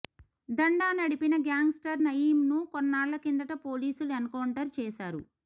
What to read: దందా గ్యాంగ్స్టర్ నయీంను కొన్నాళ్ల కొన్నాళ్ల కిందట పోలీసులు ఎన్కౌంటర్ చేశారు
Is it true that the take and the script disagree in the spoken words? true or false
true